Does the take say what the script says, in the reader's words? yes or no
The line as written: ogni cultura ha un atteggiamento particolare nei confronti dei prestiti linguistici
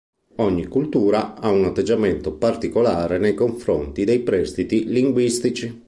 yes